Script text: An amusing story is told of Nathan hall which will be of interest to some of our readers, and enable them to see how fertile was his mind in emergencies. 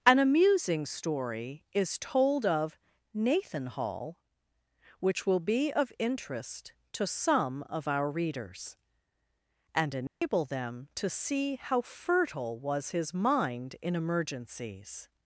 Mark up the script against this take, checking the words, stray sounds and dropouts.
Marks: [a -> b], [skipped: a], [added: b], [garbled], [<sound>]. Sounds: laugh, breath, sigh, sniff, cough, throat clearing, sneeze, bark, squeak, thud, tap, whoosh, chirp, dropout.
An amusing story is told of Nathan hall which will be of interest to some of our readers, and enable [dropout] them to see how fertile was his mind in emergencies.